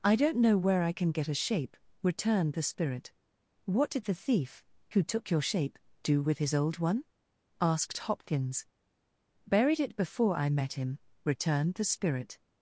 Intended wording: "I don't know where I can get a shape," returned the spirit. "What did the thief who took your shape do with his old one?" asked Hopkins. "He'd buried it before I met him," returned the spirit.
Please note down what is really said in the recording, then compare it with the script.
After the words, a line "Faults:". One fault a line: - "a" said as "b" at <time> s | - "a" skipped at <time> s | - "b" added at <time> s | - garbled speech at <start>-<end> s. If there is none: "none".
"I don't know where I can get a shape," returned the spirit. "What did the thief who took your shape do with his old one?" asked Hopkins. "buried it before I met him," returned the spirit.
Faults:
- "He'd" skipped at 8.7 s